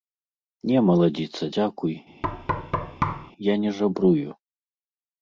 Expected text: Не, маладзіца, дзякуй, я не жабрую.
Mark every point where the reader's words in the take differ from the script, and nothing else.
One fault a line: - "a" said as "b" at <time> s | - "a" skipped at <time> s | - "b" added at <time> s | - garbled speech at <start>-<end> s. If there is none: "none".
none